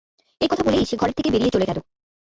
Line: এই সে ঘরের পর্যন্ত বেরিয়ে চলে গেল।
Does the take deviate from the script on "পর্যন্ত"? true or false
true